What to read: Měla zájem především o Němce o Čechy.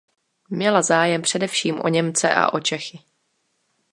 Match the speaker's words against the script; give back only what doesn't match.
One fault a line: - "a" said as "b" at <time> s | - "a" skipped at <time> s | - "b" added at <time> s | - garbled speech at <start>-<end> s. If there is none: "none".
- "a" added at 2.3 s